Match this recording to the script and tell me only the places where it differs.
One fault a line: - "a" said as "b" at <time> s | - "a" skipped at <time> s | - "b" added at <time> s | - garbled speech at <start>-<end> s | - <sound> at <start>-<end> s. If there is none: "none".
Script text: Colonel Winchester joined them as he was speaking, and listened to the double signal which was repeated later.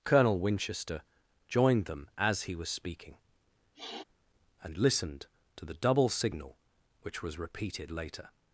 - sniff at 3.7-4.0 s